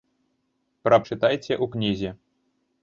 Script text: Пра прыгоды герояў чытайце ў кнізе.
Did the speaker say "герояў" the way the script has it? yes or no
no